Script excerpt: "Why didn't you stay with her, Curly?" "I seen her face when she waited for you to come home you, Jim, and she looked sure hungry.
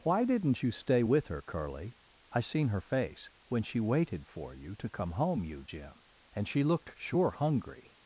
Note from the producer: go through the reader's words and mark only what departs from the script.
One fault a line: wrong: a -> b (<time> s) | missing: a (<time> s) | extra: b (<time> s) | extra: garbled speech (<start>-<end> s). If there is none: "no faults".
no faults